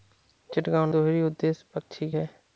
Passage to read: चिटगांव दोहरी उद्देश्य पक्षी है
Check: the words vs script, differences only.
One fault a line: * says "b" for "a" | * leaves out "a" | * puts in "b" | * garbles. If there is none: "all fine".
all fine